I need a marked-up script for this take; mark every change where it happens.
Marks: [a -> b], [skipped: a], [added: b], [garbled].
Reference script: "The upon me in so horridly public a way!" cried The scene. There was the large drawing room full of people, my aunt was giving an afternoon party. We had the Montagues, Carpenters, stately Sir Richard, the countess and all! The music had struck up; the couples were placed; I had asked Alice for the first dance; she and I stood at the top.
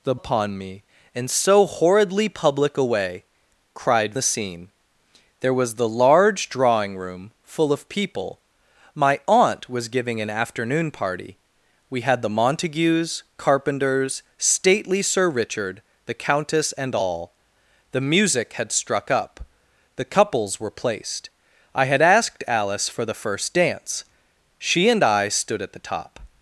"The upon me in so horridly public a way!" cried The scene. There was the large drawing room full of people, my aunt was giving an afternoon party. We had the Montagues, Carpenters, stately Sir Richard, the countess and all! The music had struck up; the couples were placed; I had asked Alice for the first dance; she and I stood at the top.